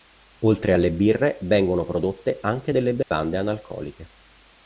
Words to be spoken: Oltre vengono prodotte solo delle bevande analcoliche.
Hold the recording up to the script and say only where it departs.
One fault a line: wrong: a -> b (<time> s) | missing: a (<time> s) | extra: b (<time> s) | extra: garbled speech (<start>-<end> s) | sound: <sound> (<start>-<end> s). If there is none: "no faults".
extra: alle birre (0.7 s)
wrong: solo -> anche (2.4 s)
sound: dropout (3.0-3.1 s)